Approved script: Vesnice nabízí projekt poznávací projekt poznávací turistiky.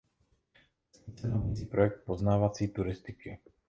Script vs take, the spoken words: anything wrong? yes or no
yes